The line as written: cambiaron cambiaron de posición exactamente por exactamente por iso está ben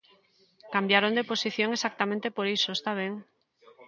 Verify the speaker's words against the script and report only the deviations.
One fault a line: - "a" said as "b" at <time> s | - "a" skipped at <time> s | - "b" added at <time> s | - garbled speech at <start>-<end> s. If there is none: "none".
- "cambiaron" skipped at 1.1 s
- "exactamente por" skipped at 2.5 s